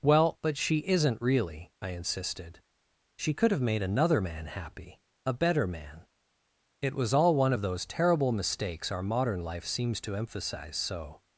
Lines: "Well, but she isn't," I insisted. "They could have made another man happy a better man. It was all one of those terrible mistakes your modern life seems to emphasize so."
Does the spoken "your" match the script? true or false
false